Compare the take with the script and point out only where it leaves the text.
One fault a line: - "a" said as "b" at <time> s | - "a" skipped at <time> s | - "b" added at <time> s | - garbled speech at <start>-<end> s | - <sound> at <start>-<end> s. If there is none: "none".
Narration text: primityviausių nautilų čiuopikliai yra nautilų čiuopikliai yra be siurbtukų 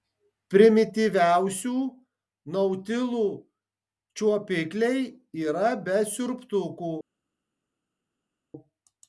- "nautilų čiuopikliai yra" skipped at 5.7 s